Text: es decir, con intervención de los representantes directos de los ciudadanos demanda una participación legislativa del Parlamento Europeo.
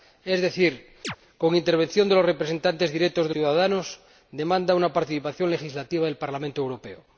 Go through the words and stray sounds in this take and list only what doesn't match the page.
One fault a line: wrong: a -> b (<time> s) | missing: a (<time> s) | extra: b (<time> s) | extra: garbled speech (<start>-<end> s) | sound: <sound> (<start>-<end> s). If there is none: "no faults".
sound: chirp (1.0-1.2 s)
missing: los (3.3 s)